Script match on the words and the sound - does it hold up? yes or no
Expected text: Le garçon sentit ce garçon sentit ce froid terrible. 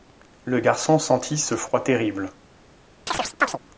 no